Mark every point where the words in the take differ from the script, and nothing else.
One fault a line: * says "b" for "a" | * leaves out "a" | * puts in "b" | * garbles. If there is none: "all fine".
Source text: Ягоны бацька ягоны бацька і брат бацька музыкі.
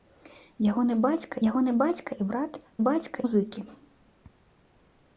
all fine